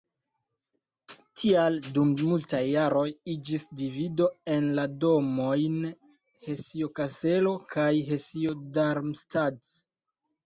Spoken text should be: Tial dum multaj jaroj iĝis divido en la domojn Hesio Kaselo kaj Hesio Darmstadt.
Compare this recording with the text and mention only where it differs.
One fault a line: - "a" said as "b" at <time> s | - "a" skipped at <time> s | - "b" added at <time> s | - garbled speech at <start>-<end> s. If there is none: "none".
none